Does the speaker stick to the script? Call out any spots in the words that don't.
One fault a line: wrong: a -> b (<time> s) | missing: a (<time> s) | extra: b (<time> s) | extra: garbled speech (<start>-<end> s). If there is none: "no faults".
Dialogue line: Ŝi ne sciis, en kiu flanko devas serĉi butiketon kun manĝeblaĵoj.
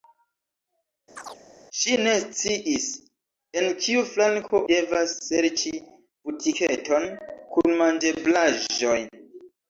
no faults